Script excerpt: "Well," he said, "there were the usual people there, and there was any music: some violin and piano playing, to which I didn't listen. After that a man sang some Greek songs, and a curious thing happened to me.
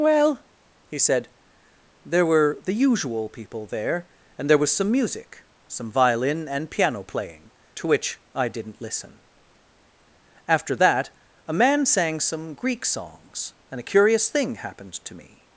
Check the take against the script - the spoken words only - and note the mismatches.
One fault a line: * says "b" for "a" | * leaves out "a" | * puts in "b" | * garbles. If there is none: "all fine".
* says "some" for "any"